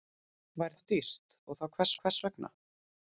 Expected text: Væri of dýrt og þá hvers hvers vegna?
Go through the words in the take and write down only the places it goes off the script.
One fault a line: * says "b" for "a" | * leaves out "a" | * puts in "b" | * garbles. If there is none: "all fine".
all fine